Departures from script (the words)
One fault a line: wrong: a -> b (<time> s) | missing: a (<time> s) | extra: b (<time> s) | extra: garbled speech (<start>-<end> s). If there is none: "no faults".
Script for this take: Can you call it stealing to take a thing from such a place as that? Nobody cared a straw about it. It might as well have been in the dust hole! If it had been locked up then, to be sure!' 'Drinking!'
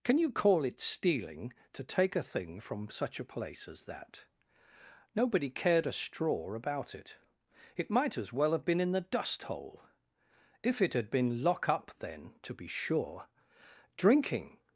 wrong: locked -> lock (11.4 s)